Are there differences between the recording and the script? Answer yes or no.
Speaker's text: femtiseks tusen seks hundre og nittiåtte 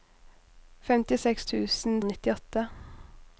yes